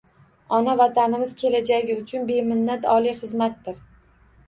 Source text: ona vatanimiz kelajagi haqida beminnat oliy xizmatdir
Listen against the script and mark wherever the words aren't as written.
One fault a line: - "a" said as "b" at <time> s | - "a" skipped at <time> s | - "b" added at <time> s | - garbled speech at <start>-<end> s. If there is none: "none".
- "haqida" said as "uchun" at 2.0 s